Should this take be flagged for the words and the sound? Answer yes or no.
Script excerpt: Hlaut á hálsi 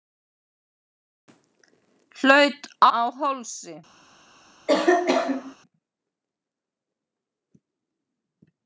yes